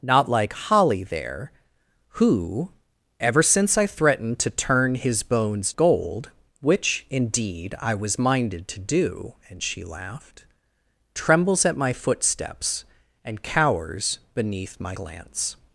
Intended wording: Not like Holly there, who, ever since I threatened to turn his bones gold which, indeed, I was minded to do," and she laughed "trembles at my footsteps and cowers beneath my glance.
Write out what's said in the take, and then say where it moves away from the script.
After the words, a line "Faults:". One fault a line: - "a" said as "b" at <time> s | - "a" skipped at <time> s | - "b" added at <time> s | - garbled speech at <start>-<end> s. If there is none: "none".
Not like Holly there, who, ever since I threatened to turn his bones gold which, indeed, I was minded to do," and she laughed "trembles at my footsteps and cowers beneath my glance.
Faults:
none